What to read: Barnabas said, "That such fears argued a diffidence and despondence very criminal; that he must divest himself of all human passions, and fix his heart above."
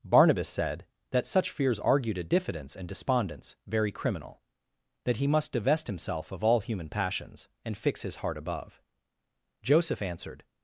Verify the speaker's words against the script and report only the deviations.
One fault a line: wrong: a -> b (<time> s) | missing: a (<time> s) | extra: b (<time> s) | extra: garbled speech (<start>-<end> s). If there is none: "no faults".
extra: Joseph answered (9.6 s)